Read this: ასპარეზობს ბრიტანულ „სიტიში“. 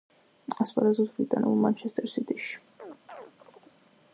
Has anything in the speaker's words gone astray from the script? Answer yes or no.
yes